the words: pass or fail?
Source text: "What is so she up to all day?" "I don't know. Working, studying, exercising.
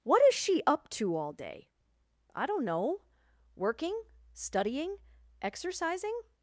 fail